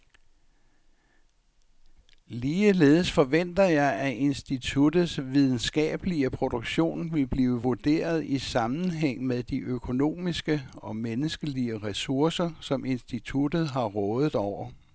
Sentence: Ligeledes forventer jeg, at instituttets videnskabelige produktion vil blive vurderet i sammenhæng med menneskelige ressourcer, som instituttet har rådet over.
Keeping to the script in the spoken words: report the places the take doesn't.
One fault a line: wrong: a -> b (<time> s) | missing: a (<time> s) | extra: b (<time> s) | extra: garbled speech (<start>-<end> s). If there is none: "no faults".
extra: de økonomiske og (9.4 s)